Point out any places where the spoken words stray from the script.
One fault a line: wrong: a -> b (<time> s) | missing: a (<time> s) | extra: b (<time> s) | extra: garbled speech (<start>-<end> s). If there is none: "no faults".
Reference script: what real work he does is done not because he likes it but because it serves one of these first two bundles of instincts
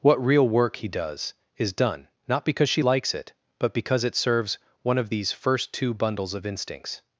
wrong: he -> she (2.7 s)